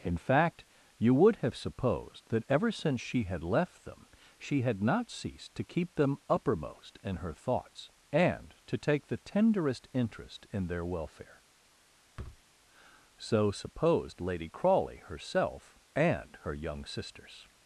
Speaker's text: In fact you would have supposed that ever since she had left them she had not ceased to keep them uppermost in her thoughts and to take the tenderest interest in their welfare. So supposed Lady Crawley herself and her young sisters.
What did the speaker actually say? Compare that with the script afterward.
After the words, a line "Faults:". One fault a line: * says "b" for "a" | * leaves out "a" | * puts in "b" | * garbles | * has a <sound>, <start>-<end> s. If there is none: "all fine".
In fact you would have supposed that ever since she had left them she had not ceased to keep them uppermost in her thoughts and to take the tenderest interest in their welfare. So supposed Lady Crawley herself and her young sisters.
Faults:
* has a thud, 12.2-12.4 s